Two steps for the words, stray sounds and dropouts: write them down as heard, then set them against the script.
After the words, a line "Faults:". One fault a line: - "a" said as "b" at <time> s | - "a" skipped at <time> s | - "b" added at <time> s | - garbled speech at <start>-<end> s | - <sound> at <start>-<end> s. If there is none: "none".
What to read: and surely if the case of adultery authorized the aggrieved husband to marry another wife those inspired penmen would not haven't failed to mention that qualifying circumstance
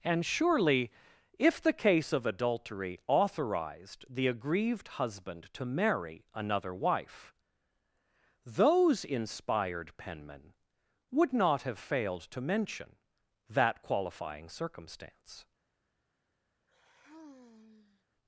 and surely if the case of adultery authorized the aggrieved husband to marry another wife those inspired penmen would not have failed to mention that qualifying circumstance
Faults:
- "haven't" said as "have" at 11.6 s
- sigh at 16.7-18.1 s